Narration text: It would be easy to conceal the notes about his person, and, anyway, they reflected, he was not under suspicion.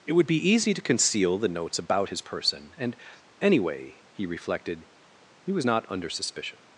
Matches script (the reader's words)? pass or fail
fail